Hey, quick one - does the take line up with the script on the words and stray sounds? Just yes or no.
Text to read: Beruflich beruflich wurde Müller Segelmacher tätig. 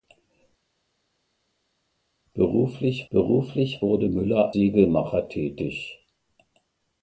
yes